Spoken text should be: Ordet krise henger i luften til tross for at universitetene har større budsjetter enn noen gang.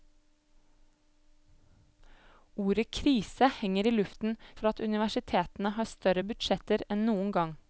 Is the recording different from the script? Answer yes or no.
yes